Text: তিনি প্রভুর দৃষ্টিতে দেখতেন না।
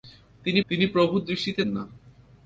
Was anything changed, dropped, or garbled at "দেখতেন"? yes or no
yes